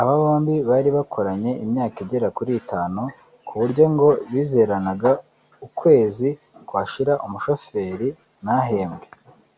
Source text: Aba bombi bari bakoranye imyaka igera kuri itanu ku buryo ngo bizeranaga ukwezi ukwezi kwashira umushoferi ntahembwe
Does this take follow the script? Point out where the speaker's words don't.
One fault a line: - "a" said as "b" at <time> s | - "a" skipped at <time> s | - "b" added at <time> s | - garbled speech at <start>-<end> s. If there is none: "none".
- "ukwezi" skipped at 6.3 s